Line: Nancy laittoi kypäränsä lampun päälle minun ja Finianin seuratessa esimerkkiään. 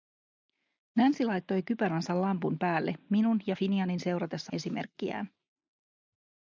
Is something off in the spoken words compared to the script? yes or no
no